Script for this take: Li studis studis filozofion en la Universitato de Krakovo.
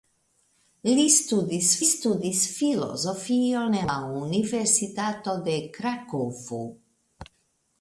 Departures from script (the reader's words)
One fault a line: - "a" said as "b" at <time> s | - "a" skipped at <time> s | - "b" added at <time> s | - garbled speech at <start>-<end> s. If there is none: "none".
none